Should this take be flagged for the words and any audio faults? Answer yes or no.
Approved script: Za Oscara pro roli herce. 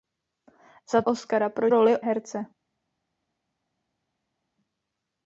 no